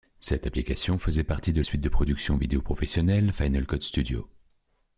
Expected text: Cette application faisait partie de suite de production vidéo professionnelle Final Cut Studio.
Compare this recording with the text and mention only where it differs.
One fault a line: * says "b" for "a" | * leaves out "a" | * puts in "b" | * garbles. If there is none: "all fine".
all fine